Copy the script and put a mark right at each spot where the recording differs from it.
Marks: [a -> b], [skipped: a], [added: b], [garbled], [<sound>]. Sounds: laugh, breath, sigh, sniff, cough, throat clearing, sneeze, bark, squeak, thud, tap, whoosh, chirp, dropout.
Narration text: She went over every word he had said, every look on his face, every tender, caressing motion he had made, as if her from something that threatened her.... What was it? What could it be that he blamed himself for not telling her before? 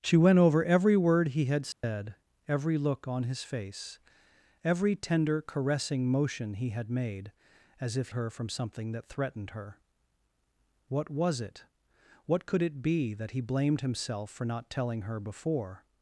She went over every word he had said, [dropout] every look on his face, every tender, caressing motion he had made, as if her from something that threatened her.... What was it? What could it be that he blamed himself for not telling her before?